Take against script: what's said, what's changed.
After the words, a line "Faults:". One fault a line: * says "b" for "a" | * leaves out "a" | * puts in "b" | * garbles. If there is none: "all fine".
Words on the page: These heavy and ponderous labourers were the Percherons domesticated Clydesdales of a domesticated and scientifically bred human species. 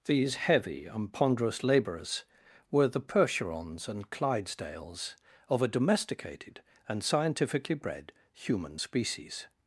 These heavy and ponderous labourers were the Percherons and Clydesdales of a domesticated and scientifically bred human species.
Faults:
* says "and" for "domesticated"